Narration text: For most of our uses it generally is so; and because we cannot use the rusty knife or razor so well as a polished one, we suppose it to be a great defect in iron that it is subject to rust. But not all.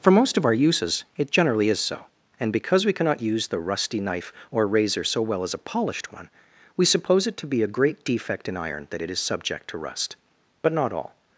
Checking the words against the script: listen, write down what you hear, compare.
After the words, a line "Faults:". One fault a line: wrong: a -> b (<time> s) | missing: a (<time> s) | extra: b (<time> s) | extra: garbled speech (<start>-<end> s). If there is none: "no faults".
For most of our uses it generally is so; and because we cannot use the rusty knife or razor so well as a polished one, we suppose it to be a great defect in iron that it is subject to rust. But not all.
Faults:
no faults